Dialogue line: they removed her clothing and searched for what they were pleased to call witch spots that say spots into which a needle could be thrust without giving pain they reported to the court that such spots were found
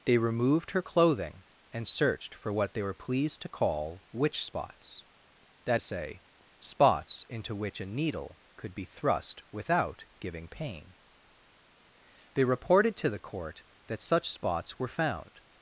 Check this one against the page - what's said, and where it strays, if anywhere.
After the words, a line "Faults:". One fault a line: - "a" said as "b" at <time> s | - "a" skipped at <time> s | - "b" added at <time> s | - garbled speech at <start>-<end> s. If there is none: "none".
they removed her clothing and searched for what they were pleased to call witch spots that say spots into which a needle could be thrust without giving pain they reported to the court that such spots were found
Faults:
none